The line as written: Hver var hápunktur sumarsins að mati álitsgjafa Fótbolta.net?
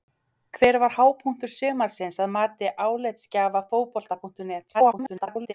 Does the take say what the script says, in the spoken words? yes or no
no